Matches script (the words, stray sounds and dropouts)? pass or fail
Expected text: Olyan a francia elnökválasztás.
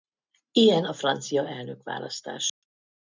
fail